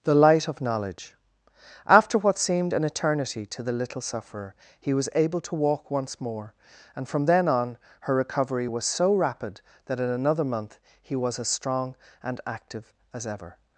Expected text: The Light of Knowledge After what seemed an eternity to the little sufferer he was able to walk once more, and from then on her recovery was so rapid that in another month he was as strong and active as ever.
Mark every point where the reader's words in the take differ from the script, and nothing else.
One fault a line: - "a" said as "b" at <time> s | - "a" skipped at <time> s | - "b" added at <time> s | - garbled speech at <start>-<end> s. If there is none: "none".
none